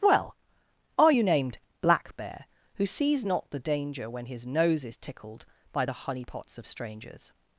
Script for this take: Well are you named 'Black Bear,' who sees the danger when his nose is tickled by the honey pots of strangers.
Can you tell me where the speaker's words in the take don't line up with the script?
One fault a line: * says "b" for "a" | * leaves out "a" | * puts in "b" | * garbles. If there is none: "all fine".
* puts in "not"